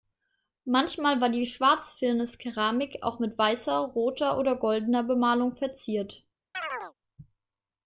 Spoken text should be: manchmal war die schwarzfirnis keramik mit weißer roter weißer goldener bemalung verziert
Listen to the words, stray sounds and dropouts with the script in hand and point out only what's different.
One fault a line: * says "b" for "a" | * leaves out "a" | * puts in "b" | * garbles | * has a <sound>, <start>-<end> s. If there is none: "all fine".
* puts in "auch"
* says "oder" for "weißer"
* has a chirp, 6.5-6.9 s